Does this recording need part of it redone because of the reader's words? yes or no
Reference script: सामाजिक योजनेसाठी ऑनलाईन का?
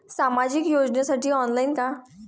no